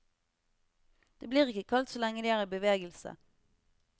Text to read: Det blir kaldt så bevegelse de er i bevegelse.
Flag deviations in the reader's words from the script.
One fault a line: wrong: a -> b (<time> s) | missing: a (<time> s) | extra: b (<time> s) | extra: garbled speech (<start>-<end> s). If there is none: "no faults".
extra: ikke (1.5 s)
wrong: bevegelse -> lenge (2.0 s)